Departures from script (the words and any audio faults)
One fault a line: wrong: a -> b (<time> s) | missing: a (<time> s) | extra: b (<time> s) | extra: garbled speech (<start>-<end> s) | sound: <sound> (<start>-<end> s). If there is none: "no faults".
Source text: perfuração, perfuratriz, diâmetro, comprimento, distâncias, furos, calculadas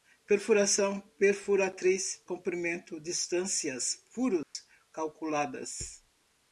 missing: diâmetro (2.2 s)
sound: dropout (4.4-4.6 s)